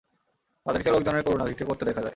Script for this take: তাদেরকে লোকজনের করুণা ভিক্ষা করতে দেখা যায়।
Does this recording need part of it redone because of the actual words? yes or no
no